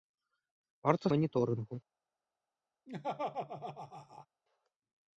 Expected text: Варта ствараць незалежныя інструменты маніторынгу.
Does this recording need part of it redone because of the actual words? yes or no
yes